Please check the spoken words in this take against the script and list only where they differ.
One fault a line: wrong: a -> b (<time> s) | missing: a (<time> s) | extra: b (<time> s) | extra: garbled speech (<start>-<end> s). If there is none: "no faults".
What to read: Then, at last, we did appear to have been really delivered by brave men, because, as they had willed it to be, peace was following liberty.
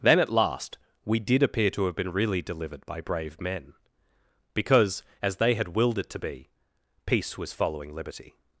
no faults